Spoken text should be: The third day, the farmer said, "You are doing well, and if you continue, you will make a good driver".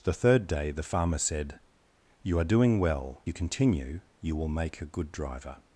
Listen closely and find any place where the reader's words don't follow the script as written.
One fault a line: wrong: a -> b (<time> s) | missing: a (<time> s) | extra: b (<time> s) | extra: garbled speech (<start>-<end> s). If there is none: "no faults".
missing: and if (3.2 s)